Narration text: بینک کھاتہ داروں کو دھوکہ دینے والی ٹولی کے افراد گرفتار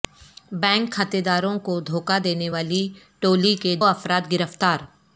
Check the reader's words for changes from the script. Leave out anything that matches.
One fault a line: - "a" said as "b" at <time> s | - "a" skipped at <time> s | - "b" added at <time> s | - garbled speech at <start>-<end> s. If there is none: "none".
none